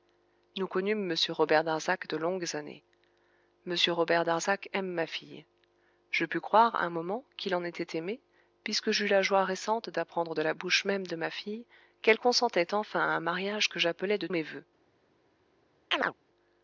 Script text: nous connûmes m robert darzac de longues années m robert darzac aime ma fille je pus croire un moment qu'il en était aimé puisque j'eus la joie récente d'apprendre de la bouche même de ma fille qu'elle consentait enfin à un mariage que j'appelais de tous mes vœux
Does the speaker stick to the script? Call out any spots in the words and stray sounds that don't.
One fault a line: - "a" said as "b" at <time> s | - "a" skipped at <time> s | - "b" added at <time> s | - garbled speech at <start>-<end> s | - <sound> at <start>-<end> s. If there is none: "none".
- "tous" skipped at 14.3 s
- chirp at 15.9-16.1 s